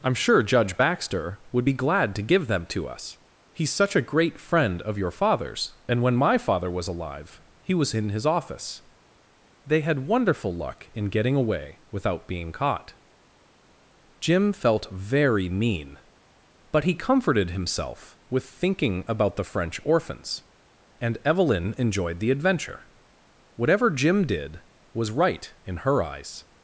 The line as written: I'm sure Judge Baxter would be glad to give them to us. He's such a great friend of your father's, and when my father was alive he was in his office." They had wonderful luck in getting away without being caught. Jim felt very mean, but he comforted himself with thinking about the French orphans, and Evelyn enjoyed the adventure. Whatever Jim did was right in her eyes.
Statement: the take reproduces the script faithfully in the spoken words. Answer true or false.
true